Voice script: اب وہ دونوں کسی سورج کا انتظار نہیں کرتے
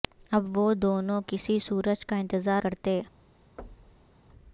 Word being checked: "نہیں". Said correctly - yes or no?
no